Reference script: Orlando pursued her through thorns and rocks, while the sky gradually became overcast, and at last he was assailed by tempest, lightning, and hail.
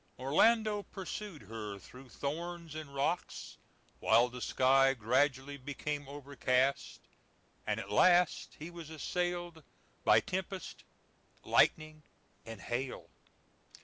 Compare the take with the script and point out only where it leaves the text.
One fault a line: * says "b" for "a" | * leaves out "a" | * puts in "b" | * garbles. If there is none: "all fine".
all fine